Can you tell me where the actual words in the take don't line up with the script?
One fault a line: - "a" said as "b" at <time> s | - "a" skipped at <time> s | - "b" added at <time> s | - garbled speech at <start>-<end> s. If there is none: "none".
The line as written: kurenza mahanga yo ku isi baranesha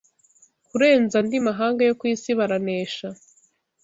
- "andi" added at 1.2 s